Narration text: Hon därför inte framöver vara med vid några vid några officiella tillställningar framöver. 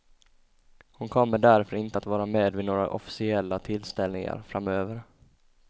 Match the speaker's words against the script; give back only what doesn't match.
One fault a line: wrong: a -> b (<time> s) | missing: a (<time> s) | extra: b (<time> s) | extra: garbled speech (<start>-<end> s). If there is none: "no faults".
extra: kommer (1.1 s)
wrong: framöver -> att (1.9 s)
missing: vid några (2.9 s)